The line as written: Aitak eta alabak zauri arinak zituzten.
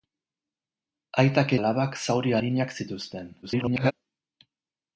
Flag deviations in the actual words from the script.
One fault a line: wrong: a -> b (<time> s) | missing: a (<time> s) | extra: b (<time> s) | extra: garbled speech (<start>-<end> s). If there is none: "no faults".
missing: eta (1.5 s)
extra: garbled speech (3.4-3.9 s)